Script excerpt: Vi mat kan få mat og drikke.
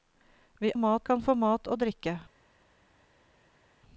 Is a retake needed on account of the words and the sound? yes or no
no